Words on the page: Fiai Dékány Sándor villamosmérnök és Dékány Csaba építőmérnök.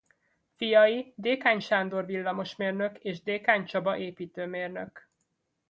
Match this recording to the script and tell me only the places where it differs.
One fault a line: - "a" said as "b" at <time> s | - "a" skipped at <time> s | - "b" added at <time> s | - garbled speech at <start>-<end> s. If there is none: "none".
none